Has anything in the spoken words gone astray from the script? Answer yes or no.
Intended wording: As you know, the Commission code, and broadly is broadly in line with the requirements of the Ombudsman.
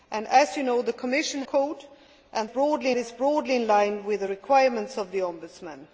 no